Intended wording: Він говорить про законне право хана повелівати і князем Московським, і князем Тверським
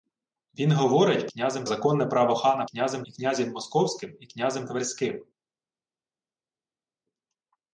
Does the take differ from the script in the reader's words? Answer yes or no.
yes